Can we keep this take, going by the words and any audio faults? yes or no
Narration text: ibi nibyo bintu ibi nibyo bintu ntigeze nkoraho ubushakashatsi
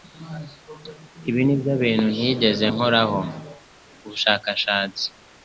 no